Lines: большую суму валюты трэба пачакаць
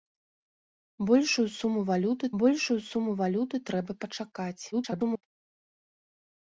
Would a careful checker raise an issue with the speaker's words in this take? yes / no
yes